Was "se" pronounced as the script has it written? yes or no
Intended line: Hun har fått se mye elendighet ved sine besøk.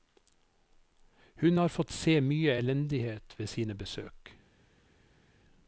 yes